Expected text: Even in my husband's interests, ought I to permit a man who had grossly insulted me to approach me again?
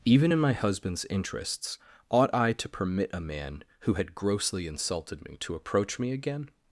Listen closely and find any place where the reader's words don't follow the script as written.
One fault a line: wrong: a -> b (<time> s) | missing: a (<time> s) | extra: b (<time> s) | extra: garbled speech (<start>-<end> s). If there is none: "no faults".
no faults